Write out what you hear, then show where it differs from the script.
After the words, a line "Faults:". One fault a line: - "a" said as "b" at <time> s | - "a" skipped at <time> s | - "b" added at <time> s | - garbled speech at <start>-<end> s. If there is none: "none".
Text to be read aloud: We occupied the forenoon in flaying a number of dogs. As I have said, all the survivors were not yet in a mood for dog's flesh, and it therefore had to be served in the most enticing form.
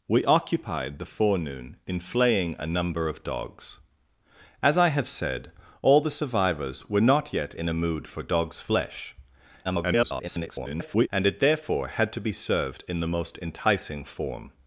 We occupied the forenoon in flaying a number of dogs. As I have said, all the survivors were not yet in a mood for dog's flesh, [garbled] and it therefore had to be served in the most enticing form.
Faults:
- garbled speech at 9.6-11.1 s